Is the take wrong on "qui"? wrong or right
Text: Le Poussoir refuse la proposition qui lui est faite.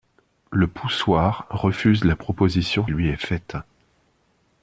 wrong